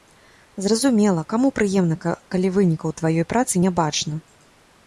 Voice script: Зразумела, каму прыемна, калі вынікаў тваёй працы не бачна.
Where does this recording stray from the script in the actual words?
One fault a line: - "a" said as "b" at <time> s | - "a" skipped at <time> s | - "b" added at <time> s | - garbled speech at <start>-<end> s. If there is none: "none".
none